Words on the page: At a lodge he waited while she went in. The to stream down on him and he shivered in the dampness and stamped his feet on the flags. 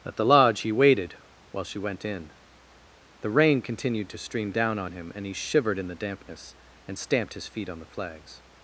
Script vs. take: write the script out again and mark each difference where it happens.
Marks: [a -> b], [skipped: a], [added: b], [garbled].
At [a -> the] lodge he waited while she went in. The [added: rain continued] to stream down on him and he shivered in the dampness and stamped his feet on the flags.